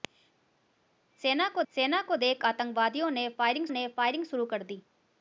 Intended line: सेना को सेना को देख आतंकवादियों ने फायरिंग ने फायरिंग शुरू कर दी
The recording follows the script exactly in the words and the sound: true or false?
true